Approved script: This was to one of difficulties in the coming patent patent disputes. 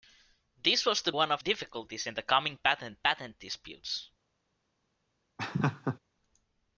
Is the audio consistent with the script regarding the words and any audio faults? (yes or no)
no